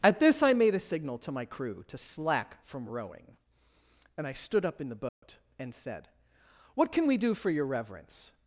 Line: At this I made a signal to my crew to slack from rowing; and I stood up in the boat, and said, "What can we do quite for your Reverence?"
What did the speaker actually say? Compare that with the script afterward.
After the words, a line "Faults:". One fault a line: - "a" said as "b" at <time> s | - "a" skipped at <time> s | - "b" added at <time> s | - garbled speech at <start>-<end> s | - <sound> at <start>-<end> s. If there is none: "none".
At this I made a signal to my crew to slack from rowing; and I stood up in the boat, and said, "What can we do for your Reverence?"
Faults:
- dropout at 5.1-5.2 s
- "quite" skipped at 7.3 s